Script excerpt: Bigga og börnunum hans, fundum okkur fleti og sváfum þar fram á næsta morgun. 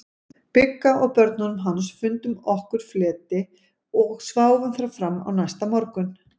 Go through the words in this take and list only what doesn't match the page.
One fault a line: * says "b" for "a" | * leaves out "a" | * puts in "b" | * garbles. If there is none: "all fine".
all fine